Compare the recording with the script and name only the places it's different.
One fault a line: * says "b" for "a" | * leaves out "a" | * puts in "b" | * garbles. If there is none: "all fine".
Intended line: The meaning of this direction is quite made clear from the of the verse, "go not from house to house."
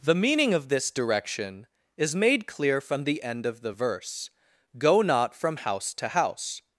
* leaves out "quite"
* puts in "end"